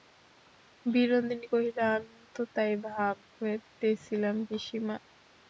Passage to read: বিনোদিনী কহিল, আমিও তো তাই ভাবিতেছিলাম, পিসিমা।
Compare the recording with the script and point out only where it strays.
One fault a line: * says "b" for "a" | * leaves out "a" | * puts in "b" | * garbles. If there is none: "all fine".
all fine